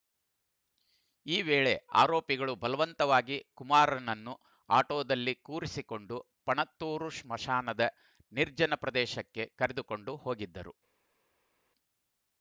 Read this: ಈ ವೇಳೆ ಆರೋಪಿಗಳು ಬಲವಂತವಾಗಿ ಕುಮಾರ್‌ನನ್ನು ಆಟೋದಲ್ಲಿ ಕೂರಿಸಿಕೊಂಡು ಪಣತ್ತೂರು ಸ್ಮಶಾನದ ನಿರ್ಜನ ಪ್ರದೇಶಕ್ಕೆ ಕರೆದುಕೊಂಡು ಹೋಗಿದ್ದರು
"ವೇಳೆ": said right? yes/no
yes